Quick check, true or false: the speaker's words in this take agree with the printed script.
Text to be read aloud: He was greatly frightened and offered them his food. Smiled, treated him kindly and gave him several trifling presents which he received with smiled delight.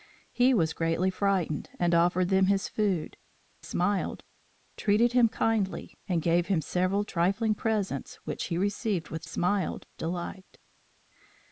true